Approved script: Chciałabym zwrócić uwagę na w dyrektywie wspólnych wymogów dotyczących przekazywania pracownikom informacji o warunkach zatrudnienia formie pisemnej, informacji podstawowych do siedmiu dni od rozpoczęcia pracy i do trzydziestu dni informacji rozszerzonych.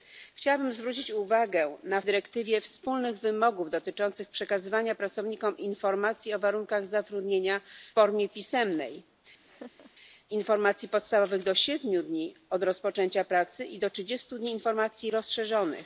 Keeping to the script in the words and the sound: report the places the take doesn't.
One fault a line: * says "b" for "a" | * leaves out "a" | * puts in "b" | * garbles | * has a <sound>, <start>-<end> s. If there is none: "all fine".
* has a laugh, 9.4-9.9 s